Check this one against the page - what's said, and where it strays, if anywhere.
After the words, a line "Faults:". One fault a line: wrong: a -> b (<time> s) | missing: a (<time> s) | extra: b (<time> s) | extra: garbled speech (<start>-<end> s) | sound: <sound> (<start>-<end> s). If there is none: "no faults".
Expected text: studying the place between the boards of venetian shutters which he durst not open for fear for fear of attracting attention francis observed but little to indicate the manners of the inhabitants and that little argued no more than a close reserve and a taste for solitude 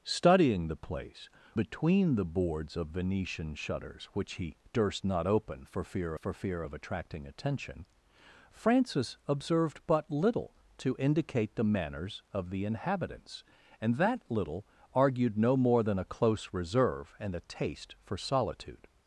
studying the place between the boards of venetian shutters which he durst not open for fear for fear of attracting attention francis observed but little to indicate the manners of the inhabitants and that little argued no more than a close reserve and a taste for solitude
Faults:
no faults